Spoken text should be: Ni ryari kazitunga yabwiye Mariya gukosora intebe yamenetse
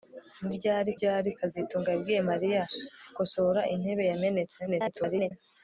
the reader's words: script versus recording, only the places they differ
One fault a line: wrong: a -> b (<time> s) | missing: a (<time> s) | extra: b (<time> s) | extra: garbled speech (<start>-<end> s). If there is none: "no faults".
extra: ryari (0.9 s)
extra: garbled speech (4.7-5.3 s)